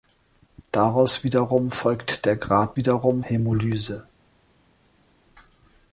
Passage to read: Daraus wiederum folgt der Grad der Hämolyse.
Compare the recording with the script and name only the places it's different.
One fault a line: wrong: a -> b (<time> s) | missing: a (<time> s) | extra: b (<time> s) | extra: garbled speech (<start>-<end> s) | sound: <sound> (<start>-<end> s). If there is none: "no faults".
wrong: der -> wiederum (2.8 s)